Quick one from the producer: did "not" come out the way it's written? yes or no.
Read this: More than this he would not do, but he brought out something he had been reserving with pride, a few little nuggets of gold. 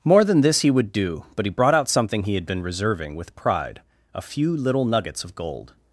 no